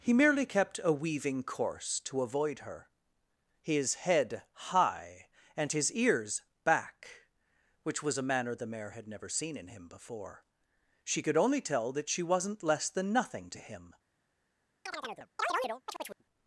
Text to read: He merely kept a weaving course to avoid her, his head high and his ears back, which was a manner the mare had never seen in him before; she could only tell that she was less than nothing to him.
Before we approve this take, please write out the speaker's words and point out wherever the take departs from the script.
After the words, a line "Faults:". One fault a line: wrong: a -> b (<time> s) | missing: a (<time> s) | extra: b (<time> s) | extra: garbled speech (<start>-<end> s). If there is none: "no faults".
He merely kept a weaving course to avoid her, his head high and his ears back, which was a manner the mare had never seen in him before; she could only tell that she wasn't less than nothing to him.
Faults:
wrong: was -> wasn't (12.2 s)